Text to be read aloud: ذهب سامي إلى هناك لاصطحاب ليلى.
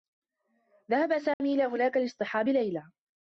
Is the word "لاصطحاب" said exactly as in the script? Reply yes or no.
yes